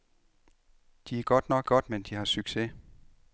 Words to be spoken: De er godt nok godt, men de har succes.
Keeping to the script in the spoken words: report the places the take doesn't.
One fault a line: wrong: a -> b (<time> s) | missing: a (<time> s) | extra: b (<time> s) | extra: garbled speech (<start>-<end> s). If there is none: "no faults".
no faults